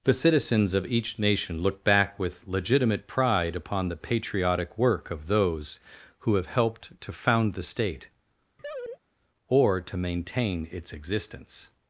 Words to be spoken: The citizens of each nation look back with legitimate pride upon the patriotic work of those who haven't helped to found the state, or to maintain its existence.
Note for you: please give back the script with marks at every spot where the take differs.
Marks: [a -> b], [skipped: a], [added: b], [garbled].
The citizens of each nation look back with legitimate pride upon the patriotic work of those who [haven't -> have] helped to found the state, or to maintain its existence.